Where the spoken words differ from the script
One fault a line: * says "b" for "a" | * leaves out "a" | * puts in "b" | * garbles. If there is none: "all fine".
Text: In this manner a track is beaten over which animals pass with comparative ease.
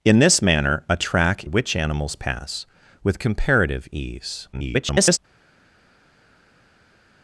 * leaves out "is beaten over"
* garbles